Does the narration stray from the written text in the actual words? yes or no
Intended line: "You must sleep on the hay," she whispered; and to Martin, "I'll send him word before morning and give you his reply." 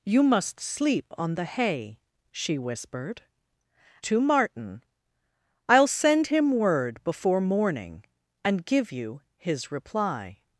yes